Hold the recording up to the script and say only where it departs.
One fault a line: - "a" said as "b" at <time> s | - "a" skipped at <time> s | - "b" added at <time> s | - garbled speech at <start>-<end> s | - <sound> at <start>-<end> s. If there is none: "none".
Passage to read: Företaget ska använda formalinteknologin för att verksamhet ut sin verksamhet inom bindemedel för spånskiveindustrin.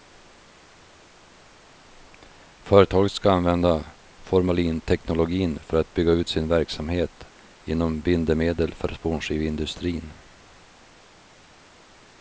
- "verksamhet" said as "bygga" at 5.9 s